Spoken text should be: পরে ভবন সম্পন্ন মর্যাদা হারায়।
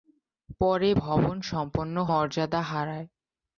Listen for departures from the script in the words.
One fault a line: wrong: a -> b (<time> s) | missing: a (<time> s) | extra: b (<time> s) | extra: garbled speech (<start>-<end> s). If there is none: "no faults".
no faults